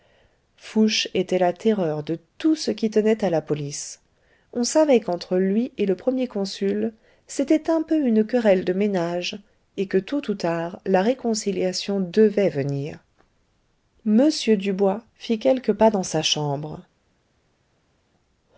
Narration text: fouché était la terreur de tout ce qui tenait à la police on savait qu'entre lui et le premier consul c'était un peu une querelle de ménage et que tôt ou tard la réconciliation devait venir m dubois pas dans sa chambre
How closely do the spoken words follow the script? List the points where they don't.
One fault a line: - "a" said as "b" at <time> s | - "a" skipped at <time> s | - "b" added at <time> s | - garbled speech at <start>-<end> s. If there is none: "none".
- "fit quelques" added at 15.2 s